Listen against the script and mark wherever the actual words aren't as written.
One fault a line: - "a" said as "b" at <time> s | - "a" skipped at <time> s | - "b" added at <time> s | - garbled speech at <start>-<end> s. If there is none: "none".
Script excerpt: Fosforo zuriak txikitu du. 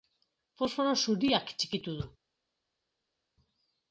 none